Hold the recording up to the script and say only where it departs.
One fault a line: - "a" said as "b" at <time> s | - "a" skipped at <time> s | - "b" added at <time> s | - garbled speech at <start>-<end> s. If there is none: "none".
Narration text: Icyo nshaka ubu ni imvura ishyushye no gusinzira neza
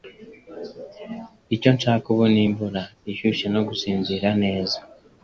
none